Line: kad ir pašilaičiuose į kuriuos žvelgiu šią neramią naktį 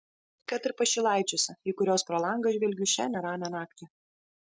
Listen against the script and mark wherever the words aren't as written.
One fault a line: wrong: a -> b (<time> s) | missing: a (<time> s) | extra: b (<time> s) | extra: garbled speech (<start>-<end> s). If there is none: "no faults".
extra: pro langą (2.1 s)